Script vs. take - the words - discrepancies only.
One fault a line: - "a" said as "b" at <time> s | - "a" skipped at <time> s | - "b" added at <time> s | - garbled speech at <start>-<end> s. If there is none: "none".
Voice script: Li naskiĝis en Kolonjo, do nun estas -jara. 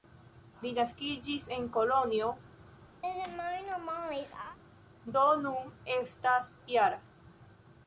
none